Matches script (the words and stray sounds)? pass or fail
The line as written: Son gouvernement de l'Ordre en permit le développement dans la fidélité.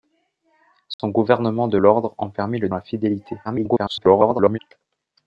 fail